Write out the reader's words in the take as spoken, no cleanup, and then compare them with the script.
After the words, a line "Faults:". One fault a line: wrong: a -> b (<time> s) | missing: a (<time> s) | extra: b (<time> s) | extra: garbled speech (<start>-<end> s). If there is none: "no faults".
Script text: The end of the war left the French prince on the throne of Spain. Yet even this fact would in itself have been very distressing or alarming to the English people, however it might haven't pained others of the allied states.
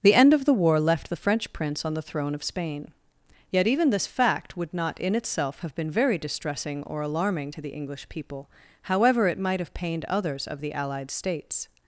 The end of the war left the French prince on the throne of Spain. Yet even this fact would not in itself have been very distressing or alarming to the English people, however it might have pained others of the allied states.
Faults:
extra: not (4.7 s)
wrong: haven't -> have (9.6 s)